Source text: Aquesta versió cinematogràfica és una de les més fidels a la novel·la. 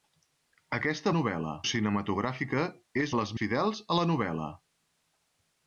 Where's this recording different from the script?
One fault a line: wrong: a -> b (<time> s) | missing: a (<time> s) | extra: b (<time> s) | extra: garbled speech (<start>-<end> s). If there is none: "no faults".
wrong: versió -> novel·la (1.2 s)
missing: una (3.1 s)
missing: més (3.3 s)